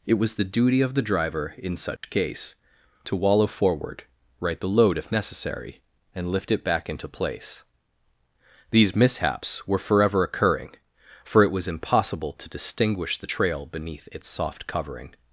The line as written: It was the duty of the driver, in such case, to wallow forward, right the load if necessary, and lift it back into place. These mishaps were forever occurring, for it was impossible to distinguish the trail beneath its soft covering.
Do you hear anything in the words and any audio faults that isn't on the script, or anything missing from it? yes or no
yes